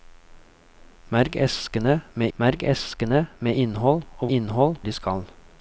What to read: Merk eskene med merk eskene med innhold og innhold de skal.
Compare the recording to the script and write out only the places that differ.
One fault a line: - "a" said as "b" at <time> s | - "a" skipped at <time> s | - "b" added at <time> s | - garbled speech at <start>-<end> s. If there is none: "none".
none